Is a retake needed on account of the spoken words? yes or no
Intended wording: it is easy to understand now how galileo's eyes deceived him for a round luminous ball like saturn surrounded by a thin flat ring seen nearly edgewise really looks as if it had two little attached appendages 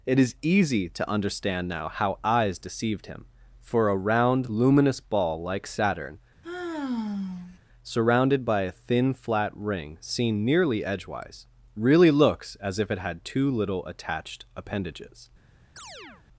yes